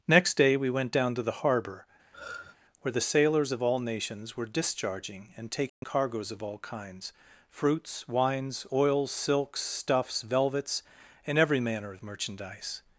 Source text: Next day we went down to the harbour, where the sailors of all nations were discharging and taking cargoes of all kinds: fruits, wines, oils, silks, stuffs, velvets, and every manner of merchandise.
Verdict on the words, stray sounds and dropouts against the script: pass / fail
fail